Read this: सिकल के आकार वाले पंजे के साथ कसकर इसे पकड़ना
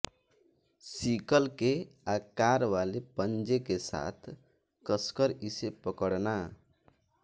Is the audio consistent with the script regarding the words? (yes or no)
yes